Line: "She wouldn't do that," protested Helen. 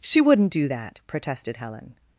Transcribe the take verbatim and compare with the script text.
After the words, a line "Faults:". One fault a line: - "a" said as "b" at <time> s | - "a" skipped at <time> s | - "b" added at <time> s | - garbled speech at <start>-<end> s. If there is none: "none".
"She wouldn't do that," protested Helen.
Faults:
none